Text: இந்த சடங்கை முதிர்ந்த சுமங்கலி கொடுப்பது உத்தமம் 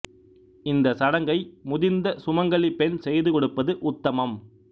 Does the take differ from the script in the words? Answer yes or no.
yes